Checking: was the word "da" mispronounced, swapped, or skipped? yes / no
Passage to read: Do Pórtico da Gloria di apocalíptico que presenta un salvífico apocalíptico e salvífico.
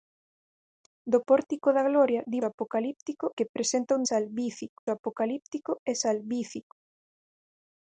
no